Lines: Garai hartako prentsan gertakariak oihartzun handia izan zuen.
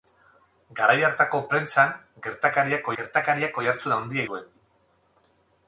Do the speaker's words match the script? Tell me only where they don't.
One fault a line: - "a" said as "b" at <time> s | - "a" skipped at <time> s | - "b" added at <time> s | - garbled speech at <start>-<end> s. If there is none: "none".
- "gertakariak" added at 3.0 s
- "izan" skipped at 4.3 s